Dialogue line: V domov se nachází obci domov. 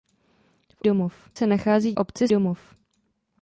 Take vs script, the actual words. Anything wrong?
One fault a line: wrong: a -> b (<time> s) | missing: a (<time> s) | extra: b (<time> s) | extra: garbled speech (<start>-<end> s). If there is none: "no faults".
no faults